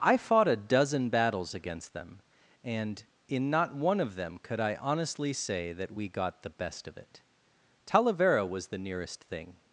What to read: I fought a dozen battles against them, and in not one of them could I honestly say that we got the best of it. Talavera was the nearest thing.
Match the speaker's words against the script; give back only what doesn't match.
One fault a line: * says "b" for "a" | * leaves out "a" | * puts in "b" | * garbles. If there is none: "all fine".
all fine